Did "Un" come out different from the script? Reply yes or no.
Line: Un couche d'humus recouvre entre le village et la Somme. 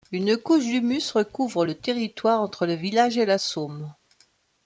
yes